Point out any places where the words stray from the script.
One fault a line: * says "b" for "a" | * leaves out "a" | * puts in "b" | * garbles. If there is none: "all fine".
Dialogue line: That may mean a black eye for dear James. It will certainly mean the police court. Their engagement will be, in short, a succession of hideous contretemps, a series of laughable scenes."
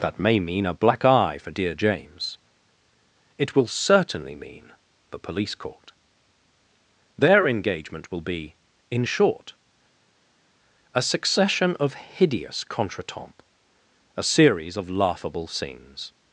all fine